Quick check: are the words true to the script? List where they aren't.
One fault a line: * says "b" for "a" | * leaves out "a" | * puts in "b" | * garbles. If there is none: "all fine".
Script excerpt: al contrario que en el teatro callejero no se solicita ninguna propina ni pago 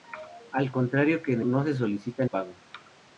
* leaves out "el teatro callejero"
* leaves out "ninguna propina ni"